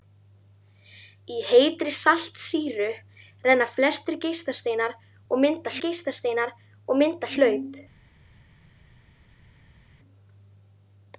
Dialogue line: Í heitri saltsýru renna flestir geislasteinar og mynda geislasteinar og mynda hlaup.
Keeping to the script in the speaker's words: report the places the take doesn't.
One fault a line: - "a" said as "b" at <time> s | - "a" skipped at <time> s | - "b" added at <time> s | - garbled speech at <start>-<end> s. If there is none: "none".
none